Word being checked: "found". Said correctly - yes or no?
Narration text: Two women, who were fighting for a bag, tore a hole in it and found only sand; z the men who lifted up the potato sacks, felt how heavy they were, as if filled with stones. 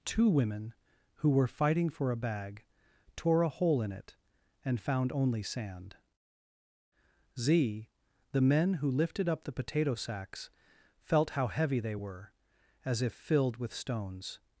yes